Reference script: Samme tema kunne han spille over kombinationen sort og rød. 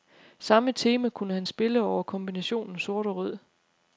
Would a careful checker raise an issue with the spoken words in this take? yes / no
no